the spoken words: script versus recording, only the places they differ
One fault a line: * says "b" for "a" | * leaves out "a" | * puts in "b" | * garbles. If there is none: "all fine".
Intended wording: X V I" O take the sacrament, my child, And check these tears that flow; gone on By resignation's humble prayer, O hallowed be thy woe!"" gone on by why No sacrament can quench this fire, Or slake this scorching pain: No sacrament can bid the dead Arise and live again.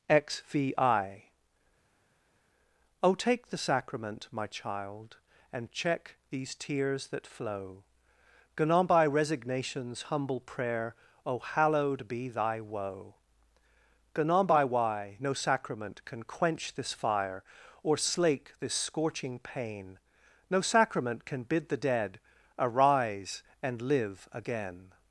all fine